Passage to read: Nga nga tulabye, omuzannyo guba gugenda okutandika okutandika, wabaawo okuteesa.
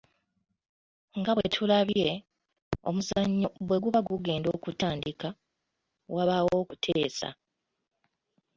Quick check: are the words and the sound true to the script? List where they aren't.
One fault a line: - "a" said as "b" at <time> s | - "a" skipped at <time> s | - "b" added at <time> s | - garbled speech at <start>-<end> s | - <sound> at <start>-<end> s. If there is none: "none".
- "nga" said as "bwe" at 1.4 s
- "bwe" added at 3.7 s
- "okutandika" skipped at 5.3 s